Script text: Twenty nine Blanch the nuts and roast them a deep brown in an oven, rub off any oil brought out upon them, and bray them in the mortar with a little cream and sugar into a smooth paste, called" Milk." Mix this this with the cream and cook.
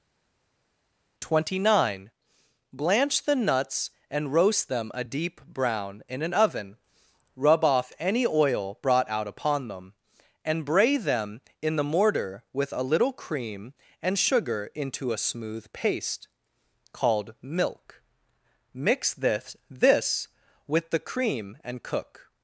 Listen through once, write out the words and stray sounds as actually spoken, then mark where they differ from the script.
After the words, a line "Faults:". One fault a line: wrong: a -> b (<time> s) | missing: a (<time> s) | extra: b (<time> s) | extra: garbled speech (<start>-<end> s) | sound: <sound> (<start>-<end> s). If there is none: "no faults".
Twenty nine Blanch the nuts and roast them a deep brown in an oven, rub off any oil brought out upon them, and bray them in the mortar with a little cream and sugar into a smooth paste, called" Milk." Mix this this with the cream and cook.
Faults:
no faults